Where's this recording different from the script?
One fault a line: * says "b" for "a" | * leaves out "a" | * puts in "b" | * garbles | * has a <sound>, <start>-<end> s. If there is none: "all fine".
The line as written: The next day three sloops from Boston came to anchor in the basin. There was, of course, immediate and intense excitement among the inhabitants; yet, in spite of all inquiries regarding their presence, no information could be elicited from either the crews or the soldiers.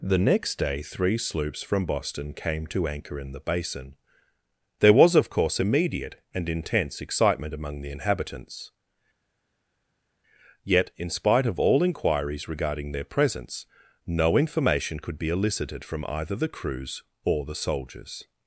all fine